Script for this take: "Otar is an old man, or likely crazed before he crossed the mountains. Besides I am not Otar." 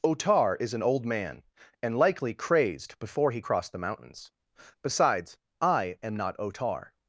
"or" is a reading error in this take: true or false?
true